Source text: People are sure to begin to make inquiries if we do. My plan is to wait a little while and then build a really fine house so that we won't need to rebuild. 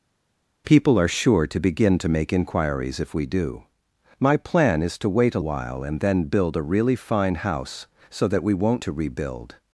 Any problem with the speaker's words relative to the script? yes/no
yes